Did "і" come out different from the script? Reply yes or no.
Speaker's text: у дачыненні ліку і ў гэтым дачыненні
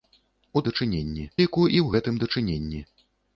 no